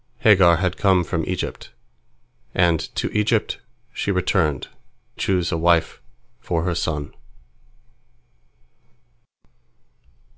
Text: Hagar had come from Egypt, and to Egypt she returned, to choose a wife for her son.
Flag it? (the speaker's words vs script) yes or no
yes